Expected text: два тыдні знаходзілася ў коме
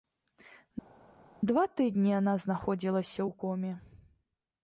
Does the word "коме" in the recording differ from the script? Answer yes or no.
no